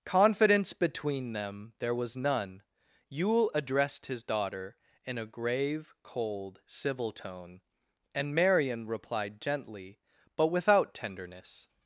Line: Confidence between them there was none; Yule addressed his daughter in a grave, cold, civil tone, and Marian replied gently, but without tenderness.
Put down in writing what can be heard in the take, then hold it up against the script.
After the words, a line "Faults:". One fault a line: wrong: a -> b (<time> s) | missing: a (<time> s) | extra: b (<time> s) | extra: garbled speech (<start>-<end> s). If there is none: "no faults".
Confidence between them there was none; Yule addressed his daughter in a grave, cold, civil tone, and Marian replied gently, but without tenderness.
Faults:
no faults